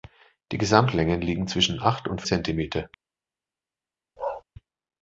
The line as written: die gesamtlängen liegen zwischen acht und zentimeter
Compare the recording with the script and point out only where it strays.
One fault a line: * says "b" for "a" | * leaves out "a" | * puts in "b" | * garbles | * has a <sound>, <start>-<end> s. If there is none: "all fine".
* has a bark, 4.2-4.4 s